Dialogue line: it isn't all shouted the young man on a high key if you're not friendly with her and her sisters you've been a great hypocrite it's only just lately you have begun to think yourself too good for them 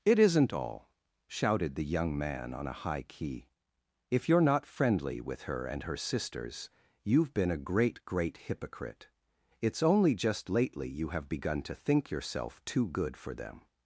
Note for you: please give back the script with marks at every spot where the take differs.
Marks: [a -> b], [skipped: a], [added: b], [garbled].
it isn't all shouted the young man on a high key if you're not friendly with her and her sisters you've been a great [added: great] hypocrite it's only just lately you have begun to think yourself too good for them